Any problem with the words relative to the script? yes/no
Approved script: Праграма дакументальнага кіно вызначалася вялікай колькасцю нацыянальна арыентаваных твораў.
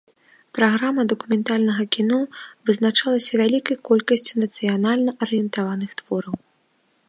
no